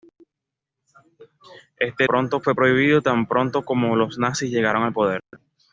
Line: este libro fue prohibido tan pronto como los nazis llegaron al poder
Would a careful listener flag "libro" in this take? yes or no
yes